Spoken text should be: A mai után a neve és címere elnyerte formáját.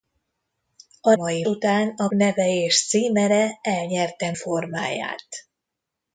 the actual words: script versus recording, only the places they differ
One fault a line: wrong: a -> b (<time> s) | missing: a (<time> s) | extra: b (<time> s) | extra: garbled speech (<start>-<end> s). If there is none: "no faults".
no faults